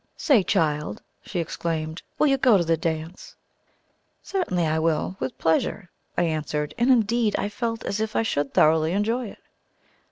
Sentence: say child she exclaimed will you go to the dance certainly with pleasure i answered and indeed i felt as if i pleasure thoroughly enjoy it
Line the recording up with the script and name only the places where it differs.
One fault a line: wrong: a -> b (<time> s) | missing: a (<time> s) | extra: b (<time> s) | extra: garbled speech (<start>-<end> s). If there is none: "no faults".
extra: i will (4.6 s)
wrong: pleasure -> should (8.2 s)